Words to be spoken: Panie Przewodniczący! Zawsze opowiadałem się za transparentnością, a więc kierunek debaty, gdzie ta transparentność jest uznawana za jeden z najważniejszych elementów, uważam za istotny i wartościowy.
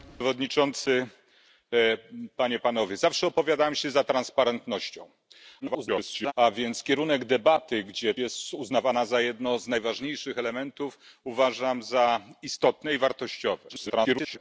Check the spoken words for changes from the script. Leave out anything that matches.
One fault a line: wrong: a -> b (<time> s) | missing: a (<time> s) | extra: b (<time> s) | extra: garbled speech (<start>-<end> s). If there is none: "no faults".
extra: garbled speech (5.6-6.3 s)
missing: ta transparentność (8.1 s)
extra: garbled speech (13.7-14.4 s)